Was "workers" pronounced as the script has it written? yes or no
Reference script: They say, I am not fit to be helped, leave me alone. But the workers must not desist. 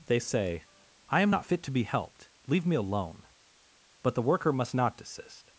no